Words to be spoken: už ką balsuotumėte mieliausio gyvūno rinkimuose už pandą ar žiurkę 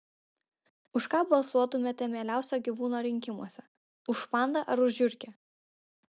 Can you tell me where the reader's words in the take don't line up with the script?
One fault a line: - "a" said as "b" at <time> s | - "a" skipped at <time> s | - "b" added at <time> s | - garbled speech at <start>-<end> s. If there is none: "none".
- "už" added at 4.9 s